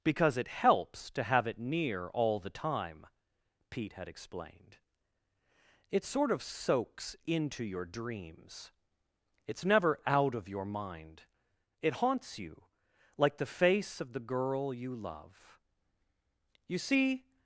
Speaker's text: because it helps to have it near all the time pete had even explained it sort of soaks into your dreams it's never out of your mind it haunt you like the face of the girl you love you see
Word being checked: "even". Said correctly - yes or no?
no